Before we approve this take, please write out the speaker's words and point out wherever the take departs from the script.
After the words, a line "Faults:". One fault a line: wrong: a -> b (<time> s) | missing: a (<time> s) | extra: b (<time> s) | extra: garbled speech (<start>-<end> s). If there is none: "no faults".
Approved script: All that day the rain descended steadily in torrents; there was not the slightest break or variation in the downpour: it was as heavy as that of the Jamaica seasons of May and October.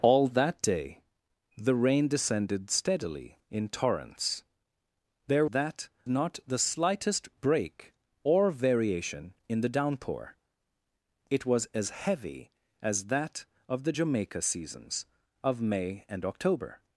All that day the rain descended steadily in torrents; there that not the slightest break or variation in the downpour: it was as heavy as that of the Jamaica seasons of May and October.
Faults:
wrong: was -> that (5.5 s)